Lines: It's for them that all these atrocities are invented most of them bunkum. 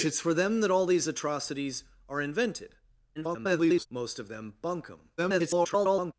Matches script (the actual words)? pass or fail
fail